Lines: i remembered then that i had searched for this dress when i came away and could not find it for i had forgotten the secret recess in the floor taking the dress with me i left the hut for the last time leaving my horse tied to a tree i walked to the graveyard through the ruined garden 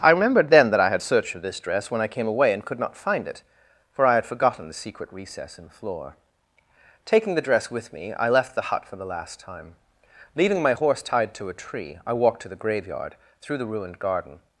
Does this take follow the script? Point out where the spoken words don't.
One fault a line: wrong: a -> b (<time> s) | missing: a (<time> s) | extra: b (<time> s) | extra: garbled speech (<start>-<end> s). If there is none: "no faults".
no faults